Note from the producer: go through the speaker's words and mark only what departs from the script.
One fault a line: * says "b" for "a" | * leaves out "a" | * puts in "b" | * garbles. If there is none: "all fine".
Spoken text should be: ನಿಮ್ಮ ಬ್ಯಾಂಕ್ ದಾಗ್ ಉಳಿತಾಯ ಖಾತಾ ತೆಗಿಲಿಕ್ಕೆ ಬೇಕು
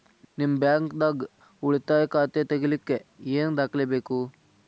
* puts in "ಏನ್ ದಾಖಲೆ"